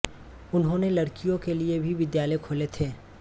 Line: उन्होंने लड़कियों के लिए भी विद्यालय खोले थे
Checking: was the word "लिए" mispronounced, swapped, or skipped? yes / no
no